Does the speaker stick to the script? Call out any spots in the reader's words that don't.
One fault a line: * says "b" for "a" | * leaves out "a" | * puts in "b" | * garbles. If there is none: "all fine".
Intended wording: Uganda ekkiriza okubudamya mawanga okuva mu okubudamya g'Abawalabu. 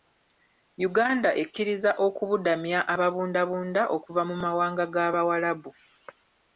* says "ababundabunda" for "mawanga"
* says "mawanga" for "okubudamya"